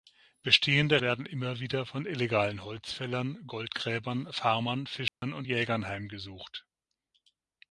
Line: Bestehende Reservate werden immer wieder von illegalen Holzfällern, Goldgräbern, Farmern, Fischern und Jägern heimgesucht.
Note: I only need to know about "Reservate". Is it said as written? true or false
false